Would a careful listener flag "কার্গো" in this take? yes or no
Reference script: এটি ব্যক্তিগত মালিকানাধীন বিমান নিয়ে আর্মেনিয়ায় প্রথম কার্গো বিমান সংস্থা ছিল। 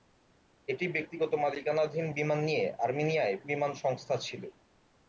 yes